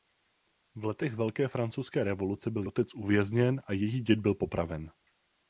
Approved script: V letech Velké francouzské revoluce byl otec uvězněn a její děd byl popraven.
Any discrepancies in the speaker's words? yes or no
no